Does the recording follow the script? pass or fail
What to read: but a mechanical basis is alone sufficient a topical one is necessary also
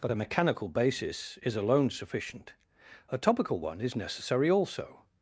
pass